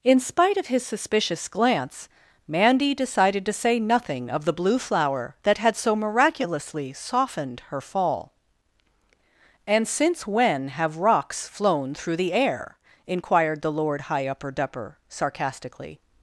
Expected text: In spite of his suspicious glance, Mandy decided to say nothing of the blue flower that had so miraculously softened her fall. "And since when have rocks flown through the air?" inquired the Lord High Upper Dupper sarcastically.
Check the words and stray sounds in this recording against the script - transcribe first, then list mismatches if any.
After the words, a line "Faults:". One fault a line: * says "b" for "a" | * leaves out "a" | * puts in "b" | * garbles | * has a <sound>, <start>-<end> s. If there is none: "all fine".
In spite of his suspicious glance, Mandy decided to say nothing of the blue flower that had so miraculously softened her fall. "And since when have rocks flown through the air?" inquired the Lord High Upper Dupper sarcastically.
Faults:
all fine